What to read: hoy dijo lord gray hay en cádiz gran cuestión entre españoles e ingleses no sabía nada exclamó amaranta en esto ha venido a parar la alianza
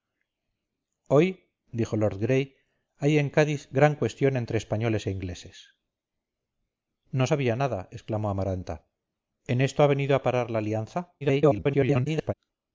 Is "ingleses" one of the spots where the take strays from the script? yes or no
no